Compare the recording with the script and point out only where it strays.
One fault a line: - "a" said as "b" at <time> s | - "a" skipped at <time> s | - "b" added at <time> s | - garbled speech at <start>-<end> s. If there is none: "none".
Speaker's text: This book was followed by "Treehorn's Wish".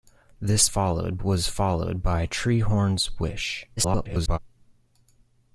- "book" said as "followed" at 0.6 s
- garbled speech at 3.8-4.4 s